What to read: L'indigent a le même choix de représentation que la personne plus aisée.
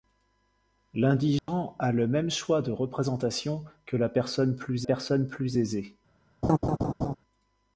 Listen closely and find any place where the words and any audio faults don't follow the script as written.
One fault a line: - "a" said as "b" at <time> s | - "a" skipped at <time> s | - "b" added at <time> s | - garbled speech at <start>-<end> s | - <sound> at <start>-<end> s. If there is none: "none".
- dropout at 1.4-1.5 s
- "personne plus" added at 4.8 s
- laugh at 6.4-7.2 s